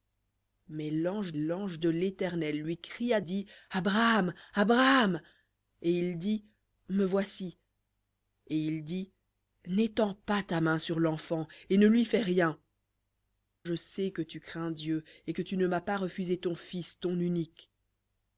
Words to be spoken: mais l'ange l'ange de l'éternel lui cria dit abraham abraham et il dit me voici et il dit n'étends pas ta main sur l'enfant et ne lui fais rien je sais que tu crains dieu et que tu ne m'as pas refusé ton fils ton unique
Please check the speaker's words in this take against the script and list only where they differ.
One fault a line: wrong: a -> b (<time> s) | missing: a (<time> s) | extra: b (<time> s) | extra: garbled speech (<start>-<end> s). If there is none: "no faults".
no faults